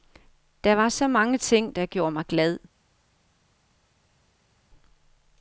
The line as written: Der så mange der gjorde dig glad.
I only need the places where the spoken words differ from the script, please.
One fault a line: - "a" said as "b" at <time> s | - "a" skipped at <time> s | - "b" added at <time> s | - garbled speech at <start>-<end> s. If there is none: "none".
- "var" added at 0.8 s
- "ting" added at 1.4 s
- "dig" said as "mig" at 2.1 s